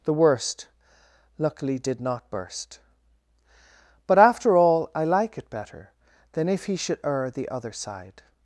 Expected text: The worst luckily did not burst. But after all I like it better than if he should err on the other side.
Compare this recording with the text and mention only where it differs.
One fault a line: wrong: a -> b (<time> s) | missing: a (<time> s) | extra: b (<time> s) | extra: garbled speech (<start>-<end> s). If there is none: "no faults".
missing: on (7.3 s)